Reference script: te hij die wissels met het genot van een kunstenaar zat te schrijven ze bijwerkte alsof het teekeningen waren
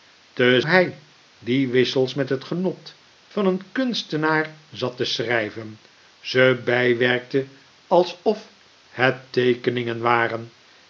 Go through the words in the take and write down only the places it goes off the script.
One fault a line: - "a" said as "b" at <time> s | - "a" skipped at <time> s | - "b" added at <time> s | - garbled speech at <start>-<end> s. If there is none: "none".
none